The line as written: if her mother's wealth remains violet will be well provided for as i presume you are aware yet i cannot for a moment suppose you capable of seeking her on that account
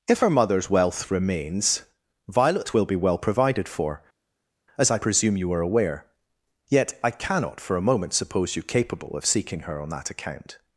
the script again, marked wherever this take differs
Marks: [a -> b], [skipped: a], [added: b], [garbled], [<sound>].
if her mother's wealth remains violet will be well provided for as i presume you are aware yet i cannot for a moment suppose you capable of seeking her on that account